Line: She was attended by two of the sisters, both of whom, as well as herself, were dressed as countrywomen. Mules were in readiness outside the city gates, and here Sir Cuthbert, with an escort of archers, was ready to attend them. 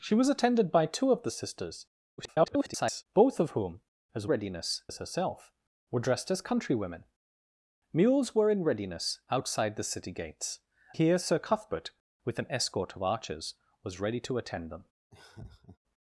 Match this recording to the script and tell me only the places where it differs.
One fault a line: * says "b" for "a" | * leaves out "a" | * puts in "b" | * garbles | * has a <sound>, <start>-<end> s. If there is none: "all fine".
* garbles
* says "readiness" for "well"
* leaves out "and"
* has a laugh, 15.1-15.8 s